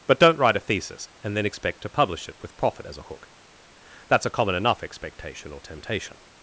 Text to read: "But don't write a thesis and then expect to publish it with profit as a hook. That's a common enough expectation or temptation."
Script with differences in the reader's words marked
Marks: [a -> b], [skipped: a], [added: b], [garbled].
"But don't write a thesis and then expect to publish it with profit as a hook. That's a common enough expectation or temptation."